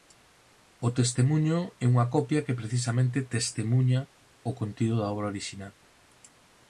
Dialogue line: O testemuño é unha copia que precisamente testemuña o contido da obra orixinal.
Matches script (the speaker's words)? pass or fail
pass